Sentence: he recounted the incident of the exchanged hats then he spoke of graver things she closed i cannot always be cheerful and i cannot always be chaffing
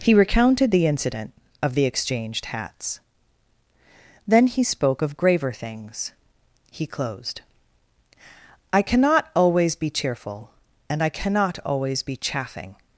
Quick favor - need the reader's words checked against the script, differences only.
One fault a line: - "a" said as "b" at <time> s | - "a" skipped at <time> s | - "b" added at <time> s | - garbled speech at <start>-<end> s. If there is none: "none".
- "she" said as "he" at 6.7 s